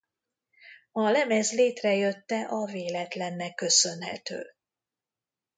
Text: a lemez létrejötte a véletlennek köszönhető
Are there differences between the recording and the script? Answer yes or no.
no